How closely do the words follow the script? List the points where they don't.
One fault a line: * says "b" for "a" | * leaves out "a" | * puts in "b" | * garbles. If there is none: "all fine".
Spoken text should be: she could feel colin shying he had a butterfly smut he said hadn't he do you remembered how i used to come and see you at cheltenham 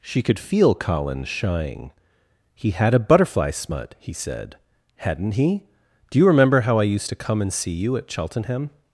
* says "remember" for "remembered"